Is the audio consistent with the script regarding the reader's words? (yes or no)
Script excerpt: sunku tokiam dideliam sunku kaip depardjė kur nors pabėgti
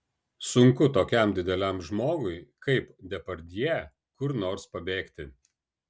no